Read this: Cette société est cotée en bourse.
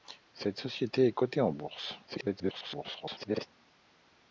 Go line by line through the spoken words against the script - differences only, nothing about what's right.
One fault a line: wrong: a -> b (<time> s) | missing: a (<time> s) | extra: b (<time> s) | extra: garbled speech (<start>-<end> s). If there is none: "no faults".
extra: garbled speech (2.1-3.5 s)